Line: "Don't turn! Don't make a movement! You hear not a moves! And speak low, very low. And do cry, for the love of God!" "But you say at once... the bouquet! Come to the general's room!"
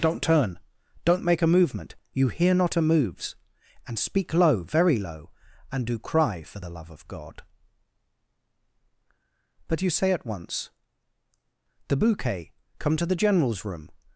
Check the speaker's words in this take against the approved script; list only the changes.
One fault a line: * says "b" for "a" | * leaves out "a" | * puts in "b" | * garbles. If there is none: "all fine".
all fine